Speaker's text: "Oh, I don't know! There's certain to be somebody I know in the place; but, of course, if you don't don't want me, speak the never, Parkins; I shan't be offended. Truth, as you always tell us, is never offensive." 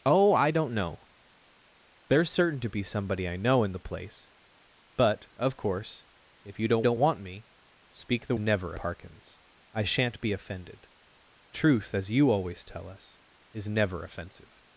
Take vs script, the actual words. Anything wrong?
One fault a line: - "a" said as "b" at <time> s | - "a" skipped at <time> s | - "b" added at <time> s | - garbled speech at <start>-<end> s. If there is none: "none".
none